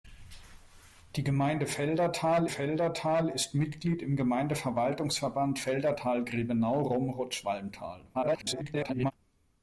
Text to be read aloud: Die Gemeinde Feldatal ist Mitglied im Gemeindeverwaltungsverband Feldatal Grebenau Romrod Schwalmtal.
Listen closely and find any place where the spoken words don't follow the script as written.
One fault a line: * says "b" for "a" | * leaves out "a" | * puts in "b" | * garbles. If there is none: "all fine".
* puts in "Feldatal"
* garbles